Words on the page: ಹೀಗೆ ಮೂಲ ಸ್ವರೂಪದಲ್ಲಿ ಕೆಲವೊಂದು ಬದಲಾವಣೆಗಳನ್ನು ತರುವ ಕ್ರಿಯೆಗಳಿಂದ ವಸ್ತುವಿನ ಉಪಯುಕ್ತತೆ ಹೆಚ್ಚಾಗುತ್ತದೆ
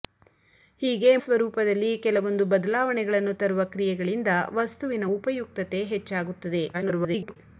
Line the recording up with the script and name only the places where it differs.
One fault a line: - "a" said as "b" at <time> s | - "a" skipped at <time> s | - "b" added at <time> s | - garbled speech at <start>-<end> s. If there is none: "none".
- "ಮೂಲ" skipped at 1.1 s
- garbled speech at 6.7-7.4 s